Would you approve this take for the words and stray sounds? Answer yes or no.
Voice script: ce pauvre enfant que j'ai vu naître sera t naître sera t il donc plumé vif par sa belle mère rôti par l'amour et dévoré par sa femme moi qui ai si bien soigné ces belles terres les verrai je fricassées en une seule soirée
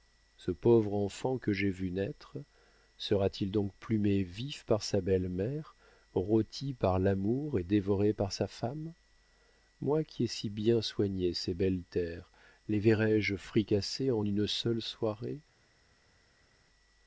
no